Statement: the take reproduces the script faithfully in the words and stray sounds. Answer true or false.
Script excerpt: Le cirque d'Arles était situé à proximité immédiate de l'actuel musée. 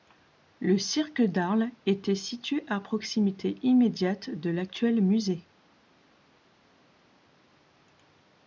true